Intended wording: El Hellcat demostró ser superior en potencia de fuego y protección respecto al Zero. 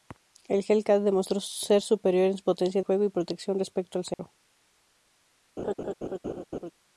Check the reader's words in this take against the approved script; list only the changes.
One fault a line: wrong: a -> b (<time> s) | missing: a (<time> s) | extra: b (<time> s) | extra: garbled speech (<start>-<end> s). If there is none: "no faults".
missing: de (2.8 s)